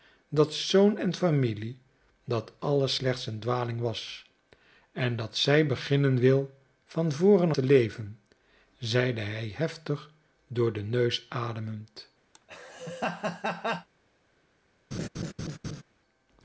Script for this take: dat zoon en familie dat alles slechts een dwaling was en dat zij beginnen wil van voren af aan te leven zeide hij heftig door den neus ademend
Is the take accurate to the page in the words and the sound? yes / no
no